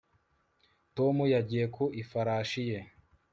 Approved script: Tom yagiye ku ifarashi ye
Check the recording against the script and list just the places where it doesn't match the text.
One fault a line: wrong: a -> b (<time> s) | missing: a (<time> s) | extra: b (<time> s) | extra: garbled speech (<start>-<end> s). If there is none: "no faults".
no faults